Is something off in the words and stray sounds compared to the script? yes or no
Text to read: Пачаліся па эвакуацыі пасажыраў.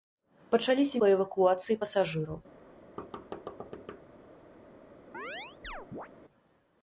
yes